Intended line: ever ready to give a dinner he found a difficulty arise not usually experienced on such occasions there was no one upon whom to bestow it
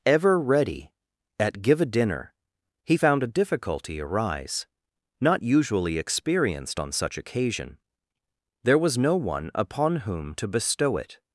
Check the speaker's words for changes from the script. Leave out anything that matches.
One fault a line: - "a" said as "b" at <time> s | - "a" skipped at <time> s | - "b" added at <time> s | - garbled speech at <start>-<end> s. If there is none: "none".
- "to" said as "at" at 1.4 s
- "occasions" said as "occasion" at 7.2 s